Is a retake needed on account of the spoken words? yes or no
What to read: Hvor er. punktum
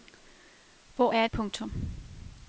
no